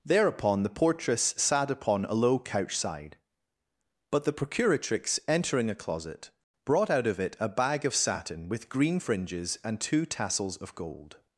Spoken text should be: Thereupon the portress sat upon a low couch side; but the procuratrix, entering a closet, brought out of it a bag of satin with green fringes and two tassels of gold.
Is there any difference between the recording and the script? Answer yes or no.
no